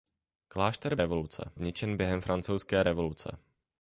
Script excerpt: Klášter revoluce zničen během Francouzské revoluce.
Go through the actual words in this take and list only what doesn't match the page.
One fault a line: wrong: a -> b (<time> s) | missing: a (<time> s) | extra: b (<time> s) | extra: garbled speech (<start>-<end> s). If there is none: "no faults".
no faults